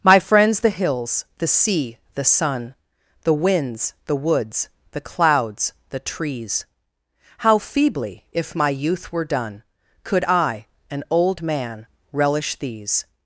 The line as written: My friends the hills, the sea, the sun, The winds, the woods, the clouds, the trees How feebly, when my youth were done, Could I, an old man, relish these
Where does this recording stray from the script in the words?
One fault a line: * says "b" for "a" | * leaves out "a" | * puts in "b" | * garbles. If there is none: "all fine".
* says "if" for "when"